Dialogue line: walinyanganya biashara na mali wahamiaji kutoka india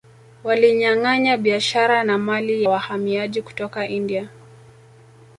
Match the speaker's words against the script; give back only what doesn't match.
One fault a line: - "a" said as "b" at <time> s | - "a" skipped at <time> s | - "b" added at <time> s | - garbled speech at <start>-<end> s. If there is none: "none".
none